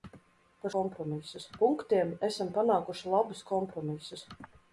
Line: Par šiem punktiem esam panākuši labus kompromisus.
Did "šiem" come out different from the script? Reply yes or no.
yes